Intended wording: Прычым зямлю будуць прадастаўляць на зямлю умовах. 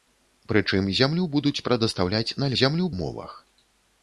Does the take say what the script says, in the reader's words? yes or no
yes